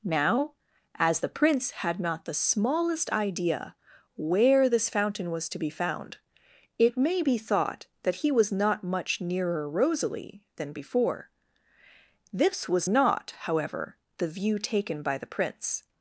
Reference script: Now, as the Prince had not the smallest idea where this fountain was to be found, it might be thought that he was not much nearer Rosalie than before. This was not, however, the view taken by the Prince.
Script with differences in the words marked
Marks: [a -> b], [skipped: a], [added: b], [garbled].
Now, as the Prince had not the smallest idea where this fountain was to be found, it [might -> may] be thought that he was not much nearer Rosalie than before. This was not, however, the view taken by the Prince.